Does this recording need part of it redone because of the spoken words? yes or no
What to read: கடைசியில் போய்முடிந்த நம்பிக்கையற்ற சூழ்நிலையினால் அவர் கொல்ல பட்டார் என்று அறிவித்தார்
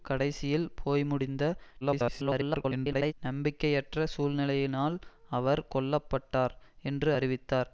yes